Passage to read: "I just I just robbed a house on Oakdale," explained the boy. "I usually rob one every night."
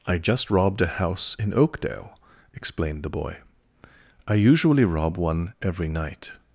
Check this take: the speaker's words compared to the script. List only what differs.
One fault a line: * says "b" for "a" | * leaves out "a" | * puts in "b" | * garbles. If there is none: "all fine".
* leaves out "I just"
* says "in" for "on"